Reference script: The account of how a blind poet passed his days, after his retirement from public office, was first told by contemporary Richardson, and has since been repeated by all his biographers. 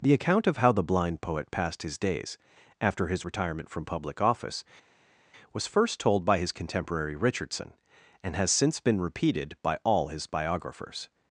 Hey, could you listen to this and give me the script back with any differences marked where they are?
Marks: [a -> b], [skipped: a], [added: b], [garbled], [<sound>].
The account of how [a -> the] blind poet passed his days, after his retirement from public office, was first told by [added: his] contemporary Richardson, and has since been repeated by all his biographers.